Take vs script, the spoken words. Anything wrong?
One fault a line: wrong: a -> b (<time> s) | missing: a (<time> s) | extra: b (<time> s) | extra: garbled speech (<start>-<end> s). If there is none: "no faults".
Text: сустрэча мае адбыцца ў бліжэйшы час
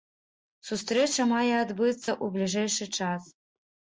no faults